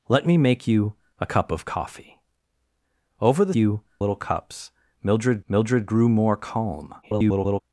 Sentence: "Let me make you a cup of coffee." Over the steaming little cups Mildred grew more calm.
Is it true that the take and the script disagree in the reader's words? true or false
true